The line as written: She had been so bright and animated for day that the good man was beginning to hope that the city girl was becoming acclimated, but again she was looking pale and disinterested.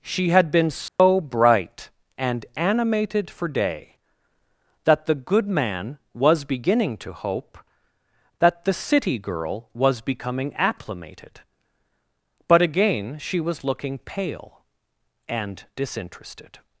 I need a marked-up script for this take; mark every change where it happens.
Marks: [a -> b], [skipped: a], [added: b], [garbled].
She had been so bright and animated for day that the good man was beginning to hope that the city girl was becoming acclimated, but again she was looking pale and disinterested.